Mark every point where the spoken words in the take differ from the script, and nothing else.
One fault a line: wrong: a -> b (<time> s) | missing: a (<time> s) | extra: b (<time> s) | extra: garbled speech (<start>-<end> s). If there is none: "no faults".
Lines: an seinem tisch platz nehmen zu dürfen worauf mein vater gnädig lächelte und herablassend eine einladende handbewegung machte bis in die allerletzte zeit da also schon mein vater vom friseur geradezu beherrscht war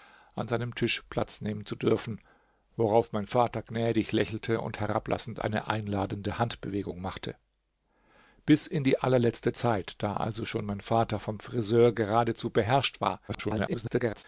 extra: garbled speech (13.3-14.2 s)